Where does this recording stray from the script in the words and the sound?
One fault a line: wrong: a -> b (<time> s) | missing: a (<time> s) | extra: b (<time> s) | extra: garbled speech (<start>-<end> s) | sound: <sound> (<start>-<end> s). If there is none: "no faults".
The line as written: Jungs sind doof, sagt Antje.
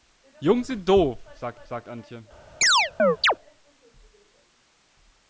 extra: sagt (1.6 s)
sound: chirp (2.6-3.4 s)